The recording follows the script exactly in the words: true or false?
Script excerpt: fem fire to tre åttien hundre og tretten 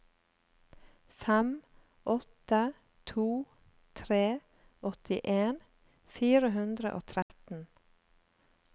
false